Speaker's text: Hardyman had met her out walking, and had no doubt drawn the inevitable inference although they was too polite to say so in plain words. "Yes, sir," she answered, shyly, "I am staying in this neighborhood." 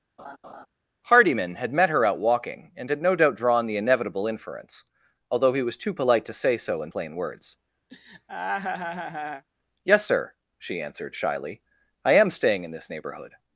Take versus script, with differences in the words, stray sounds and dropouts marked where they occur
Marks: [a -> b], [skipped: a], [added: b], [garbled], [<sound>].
[laugh] Hardyman had met her out walking, and had no doubt drawn the inevitable inference although [they -> he] was too polite to say so in plain words. [laugh] "Yes, sir," she answered, shyly, "I am staying in this neighborhood."